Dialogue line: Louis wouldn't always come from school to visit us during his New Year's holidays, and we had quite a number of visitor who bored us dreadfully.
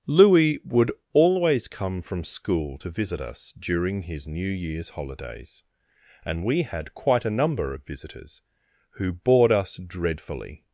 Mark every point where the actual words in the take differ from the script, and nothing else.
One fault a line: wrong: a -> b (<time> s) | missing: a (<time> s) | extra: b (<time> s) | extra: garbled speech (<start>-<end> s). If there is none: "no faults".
wrong: wouldn't -> would (0.7 s)
wrong: visitor -> visitors (7.8 s)